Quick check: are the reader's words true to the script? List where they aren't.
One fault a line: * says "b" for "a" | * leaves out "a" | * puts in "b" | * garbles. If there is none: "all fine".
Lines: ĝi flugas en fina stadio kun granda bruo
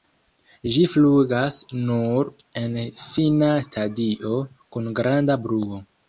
* puts in "nur"